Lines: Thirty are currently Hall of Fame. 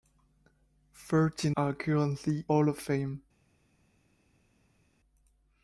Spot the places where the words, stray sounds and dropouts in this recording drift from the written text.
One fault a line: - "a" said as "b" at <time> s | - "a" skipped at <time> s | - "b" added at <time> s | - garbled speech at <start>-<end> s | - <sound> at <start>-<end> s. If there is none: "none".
none